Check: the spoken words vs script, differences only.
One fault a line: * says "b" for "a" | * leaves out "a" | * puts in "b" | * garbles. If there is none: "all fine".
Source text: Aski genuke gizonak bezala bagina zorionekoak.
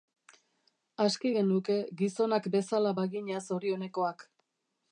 all fine